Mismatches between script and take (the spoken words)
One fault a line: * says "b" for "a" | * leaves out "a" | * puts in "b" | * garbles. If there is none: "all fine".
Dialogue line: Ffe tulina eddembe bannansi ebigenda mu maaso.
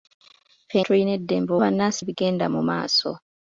all fine